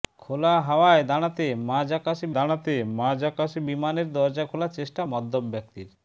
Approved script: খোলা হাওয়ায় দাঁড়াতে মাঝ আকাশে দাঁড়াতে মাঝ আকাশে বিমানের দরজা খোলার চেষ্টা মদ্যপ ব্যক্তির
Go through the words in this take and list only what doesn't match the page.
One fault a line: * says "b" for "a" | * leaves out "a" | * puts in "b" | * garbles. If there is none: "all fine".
all fine